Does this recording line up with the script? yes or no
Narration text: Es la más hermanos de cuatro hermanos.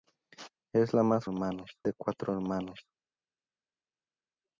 yes